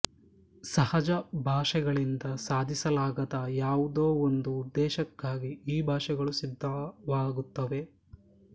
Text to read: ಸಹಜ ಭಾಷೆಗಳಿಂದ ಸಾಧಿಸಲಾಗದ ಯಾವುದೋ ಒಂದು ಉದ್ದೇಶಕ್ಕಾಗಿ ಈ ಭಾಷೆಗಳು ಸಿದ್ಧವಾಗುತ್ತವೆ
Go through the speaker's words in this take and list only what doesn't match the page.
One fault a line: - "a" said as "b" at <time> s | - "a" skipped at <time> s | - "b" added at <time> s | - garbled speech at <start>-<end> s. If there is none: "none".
none